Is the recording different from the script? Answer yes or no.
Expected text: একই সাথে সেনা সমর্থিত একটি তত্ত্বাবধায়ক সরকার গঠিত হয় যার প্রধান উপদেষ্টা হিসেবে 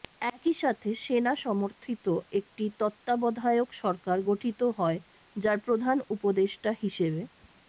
no